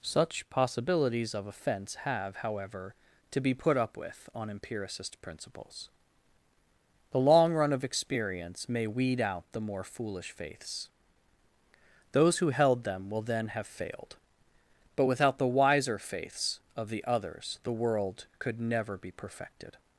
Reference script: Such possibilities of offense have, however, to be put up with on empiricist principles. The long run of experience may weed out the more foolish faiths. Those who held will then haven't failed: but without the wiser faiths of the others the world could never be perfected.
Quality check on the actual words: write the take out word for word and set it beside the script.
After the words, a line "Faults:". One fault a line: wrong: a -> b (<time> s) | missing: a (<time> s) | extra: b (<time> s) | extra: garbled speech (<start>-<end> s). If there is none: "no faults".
Such possibilities of offense have, however, to be put up with on empiricist principles. The long run of experience may weed out the more foolish faiths. Those who held them will then have failed: but without the wiser faiths of the others the world could never be perfected.
Faults:
extra: them (12.8 s)
wrong: haven't -> have (13.5 s)